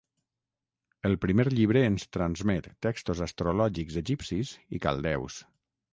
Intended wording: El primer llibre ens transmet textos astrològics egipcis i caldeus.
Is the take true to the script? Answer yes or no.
yes